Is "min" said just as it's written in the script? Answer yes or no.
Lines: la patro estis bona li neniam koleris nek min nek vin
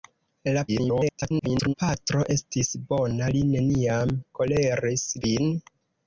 no